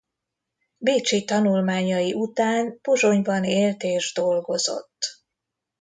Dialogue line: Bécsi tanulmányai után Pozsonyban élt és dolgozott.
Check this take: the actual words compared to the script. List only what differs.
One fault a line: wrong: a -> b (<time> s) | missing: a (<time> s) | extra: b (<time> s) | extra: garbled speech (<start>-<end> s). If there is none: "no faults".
no faults